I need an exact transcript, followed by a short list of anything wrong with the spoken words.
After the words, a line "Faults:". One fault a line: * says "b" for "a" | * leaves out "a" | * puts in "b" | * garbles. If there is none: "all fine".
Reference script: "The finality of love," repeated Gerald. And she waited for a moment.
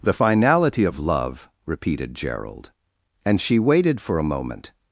"The finality of love," repeated Gerald. And she waited for a moment.
Faults:
all fine